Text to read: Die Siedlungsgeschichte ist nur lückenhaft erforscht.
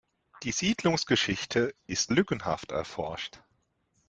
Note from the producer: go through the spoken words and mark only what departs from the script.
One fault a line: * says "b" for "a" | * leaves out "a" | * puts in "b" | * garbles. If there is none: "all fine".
* leaves out "nur"